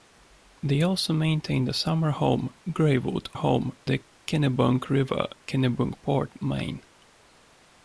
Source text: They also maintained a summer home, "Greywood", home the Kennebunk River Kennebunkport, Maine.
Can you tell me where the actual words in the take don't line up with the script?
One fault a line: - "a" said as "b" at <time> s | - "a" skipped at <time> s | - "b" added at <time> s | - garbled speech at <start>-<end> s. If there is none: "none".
none